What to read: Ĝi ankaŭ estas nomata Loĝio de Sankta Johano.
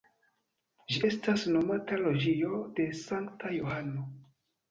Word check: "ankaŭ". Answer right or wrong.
wrong